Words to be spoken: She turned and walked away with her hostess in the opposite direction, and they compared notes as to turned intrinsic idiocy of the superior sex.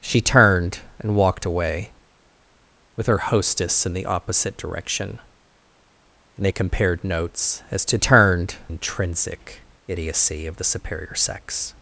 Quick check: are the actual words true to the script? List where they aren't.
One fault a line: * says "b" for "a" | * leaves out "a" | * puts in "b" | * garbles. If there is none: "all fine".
all fine